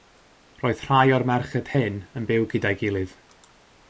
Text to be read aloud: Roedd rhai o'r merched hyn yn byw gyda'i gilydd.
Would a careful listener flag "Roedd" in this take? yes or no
no